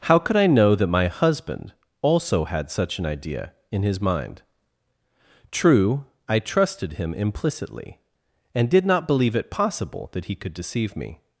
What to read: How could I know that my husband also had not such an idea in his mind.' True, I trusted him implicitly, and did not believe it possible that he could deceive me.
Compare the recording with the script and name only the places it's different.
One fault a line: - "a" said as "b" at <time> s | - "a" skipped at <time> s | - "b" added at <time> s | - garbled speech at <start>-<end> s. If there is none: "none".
- "not" skipped at 2.7 s